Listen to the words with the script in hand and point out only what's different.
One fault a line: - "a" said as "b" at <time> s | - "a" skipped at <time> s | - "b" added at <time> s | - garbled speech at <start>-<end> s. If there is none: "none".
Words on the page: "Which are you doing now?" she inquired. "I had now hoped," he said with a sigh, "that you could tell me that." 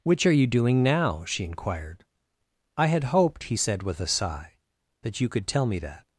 - "now" skipped at 3.1 s